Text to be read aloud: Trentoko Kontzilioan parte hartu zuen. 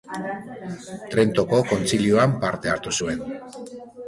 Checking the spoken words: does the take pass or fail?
pass